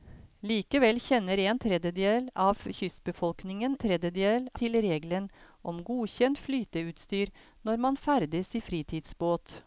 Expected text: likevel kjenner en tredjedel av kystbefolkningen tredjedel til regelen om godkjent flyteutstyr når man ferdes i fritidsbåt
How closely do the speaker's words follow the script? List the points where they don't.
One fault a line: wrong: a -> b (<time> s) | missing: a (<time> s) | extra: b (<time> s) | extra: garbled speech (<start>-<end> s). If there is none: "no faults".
no faults